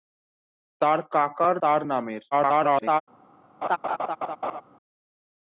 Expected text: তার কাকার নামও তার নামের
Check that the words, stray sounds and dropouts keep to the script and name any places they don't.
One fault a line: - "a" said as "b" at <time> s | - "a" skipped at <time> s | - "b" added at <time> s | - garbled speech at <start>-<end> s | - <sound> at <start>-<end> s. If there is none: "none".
- "নামও" skipped at 1.6 s
- garbled speech at 2.3-3.0 s
- laugh at 3.6-4.6 s